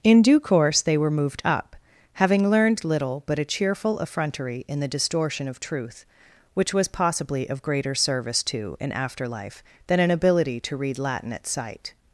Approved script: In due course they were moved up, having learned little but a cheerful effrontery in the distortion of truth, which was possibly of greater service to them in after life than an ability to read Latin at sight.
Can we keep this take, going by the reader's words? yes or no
no